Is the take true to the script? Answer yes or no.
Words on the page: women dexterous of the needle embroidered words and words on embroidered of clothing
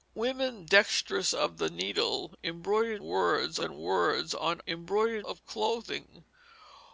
yes